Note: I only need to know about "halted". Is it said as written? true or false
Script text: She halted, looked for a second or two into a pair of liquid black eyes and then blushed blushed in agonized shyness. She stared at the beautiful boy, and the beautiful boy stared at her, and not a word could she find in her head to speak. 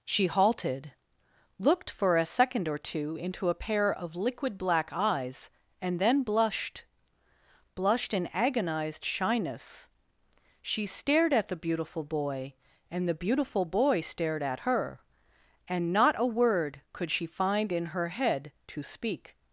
true